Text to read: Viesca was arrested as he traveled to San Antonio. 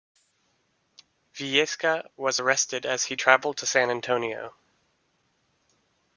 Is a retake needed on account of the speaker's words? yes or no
no